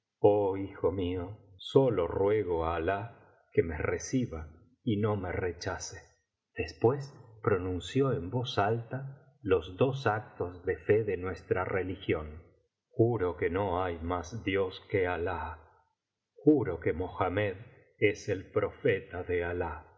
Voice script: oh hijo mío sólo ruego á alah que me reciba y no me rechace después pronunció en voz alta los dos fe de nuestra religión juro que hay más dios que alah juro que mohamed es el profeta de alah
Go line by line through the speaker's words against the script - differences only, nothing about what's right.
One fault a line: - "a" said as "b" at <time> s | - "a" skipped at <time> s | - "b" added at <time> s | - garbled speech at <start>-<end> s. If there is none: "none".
- "actos de" added at 10.1 s
- "no" added at 13.5 s